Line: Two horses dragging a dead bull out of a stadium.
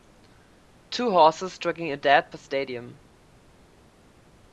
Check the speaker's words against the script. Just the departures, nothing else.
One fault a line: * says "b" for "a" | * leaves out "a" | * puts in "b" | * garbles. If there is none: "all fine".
* leaves out "bull out of"